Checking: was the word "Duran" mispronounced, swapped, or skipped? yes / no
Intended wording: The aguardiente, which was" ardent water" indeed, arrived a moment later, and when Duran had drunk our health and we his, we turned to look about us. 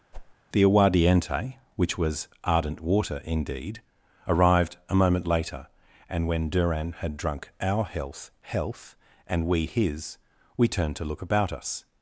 no